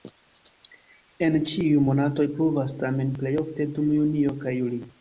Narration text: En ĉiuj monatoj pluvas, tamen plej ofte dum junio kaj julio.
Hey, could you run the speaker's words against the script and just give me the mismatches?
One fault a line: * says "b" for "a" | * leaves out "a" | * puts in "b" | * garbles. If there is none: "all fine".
all fine